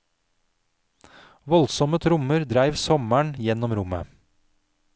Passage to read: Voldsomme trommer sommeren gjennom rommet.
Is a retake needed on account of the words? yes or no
yes